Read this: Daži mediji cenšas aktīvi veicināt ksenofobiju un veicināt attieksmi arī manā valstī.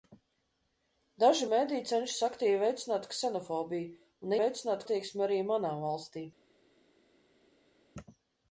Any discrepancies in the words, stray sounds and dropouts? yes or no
no